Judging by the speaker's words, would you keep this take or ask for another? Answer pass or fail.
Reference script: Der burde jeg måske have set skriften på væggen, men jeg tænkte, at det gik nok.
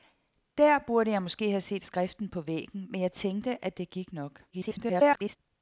fail